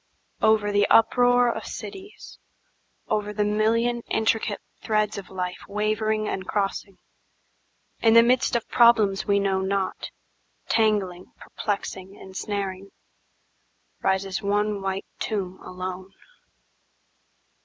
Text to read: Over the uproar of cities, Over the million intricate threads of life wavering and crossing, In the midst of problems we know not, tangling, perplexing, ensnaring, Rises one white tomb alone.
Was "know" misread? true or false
false